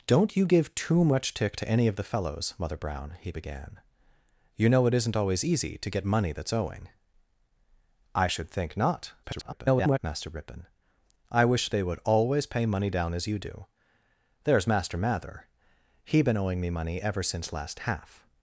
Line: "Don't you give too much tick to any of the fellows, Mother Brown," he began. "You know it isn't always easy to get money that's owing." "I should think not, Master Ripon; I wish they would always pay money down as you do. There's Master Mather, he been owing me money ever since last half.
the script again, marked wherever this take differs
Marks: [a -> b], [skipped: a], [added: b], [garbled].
"Don't you give too much tick to any of the fellows, Mother Brown," he began. "You know it isn't always easy to get money that's owing." "I should think not, [garbled] Master Ripon; I wish they would always pay money down as you do. There's Master Mather, he been owing me money ever since last half.